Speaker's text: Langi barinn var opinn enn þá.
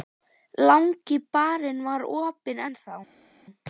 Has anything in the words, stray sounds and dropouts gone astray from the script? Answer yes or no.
no